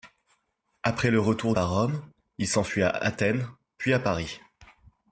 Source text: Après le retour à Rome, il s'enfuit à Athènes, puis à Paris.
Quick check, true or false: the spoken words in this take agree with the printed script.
true